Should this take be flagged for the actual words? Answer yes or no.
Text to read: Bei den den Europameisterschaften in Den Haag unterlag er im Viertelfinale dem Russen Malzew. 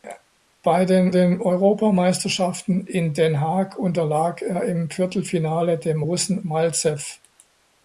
no